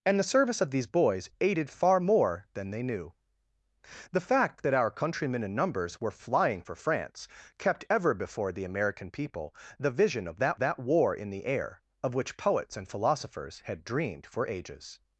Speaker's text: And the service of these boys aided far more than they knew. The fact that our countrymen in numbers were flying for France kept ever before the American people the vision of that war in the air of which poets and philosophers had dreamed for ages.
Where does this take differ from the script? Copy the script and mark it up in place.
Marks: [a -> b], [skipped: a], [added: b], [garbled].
And the service of these boys aided far more than they knew. The fact that our countrymen in numbers were flying for France kept ever before the American people the vision of that [added: that] war in the air of which poets and philosophers had dreamed for ages.